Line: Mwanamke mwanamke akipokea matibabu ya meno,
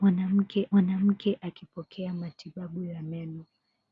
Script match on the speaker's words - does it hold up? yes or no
yes